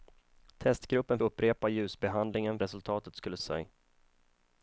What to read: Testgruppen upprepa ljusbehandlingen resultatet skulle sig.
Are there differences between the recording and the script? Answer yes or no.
no